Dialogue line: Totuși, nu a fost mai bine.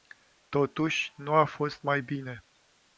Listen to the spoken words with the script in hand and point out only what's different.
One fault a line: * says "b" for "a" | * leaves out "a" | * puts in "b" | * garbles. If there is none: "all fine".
all fine